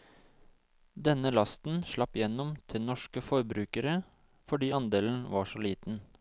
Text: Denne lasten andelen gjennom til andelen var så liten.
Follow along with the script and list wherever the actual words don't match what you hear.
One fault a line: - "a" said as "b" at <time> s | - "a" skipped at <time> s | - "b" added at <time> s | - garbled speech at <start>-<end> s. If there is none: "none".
- "andelen" said as "slapp" at 1.9 s
- "norske forbrukere fordi" added at 2.8 s